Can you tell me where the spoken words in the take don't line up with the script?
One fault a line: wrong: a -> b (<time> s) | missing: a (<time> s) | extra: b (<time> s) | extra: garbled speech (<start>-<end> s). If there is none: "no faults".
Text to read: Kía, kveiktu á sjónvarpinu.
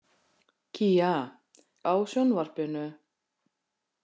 missing: kveiktu (1.1 s)